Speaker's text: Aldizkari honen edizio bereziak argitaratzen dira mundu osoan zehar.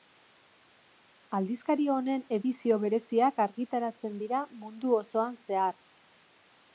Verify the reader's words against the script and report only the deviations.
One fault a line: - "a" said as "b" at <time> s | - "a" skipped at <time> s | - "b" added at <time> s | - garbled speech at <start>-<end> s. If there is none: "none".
none